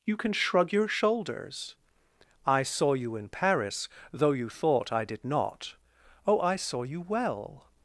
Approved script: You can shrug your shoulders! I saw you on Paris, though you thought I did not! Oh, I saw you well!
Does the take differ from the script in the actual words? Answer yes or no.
yes